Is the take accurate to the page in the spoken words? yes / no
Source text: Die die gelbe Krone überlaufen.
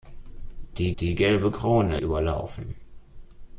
yes